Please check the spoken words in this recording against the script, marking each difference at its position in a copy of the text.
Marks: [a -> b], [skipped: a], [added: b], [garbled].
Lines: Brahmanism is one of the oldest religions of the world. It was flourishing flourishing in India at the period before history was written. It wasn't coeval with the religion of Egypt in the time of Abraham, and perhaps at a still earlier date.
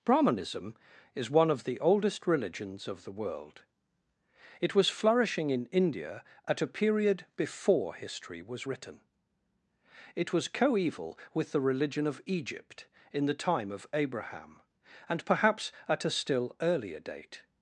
Brahmanism is one of the oldest religions of the world. It was flourishing [skipped: flourishing] in India at [the -> a] period before history was written. It [wasn't -> was] coeval with the religion of Egypt in the time of Abraham, and perhaps at a still earlier date.